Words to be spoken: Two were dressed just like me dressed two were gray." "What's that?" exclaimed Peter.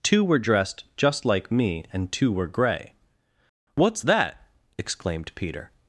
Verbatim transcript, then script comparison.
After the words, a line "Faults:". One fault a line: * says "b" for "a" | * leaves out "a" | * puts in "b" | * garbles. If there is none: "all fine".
Two were dressed just like me and two were gray." "What's that?" exclaimed Peter.
Faults:
* says "and" for "dressed"